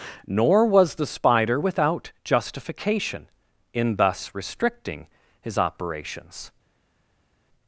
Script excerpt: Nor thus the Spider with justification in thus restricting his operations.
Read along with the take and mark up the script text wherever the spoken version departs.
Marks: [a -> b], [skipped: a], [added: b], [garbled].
Nor [thus -> was] the Spider [with -> without] justification in thus restricting his operations.